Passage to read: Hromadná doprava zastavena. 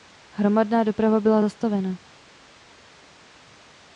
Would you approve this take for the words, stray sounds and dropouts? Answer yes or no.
no